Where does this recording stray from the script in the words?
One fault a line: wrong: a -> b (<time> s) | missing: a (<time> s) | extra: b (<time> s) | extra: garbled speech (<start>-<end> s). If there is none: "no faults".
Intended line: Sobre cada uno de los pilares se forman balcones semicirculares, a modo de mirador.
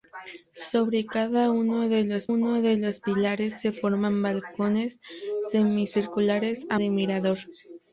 extra: uno de los (2.2 s)
missing: modo (6.8 s)